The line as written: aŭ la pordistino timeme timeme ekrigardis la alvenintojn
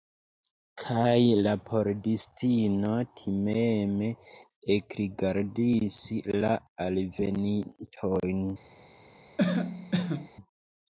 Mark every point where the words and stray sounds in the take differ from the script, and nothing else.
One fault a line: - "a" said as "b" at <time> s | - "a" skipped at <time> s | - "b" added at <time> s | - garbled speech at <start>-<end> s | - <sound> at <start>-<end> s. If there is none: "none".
- "aŭ" said as "kaj" at 0.8 s
- "timeme" skipped at 4.1 s
- cough at 9.4-10.3 s